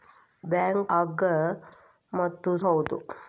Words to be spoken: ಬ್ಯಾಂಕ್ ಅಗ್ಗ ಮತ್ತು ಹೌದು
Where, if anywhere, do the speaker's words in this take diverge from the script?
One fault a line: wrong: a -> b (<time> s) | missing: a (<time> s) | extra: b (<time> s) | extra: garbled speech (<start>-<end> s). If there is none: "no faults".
no faults